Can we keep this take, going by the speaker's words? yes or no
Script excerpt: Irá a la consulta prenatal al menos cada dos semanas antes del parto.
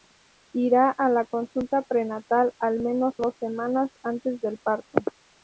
no